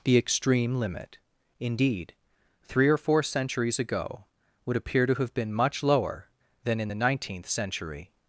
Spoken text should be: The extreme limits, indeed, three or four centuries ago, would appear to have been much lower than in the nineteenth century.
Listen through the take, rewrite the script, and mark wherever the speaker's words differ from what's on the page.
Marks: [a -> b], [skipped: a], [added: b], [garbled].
The extreme [limits, -> limit] indeed, three or four centuries ago, would appear to have been much lower than in the nineteenth century.